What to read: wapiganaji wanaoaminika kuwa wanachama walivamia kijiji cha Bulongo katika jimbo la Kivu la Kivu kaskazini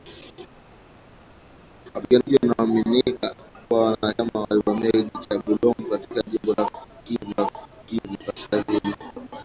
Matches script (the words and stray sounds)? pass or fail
pass